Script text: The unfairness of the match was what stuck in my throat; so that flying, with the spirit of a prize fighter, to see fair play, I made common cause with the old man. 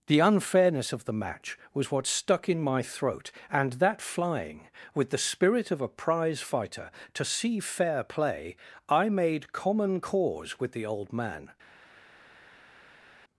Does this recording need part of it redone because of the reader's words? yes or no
yes